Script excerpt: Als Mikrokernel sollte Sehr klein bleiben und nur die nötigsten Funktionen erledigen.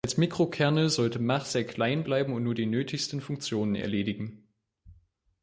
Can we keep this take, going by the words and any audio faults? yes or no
no